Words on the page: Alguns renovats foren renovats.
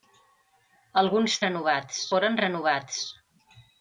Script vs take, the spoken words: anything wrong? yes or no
no